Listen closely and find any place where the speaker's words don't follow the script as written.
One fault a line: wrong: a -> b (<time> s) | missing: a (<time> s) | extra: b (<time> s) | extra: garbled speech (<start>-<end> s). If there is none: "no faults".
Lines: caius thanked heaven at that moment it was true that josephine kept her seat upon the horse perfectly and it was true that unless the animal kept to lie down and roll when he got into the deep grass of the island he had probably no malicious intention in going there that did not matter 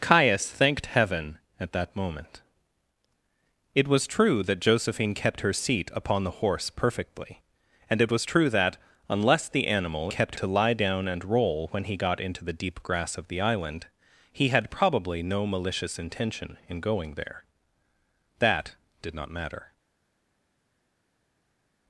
no faults